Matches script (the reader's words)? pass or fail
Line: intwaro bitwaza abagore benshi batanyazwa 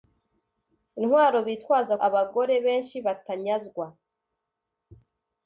pass